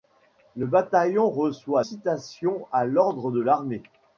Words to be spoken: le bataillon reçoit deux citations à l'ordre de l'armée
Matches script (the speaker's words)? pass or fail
fail